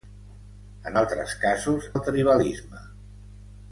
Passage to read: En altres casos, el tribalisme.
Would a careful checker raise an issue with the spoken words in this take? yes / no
no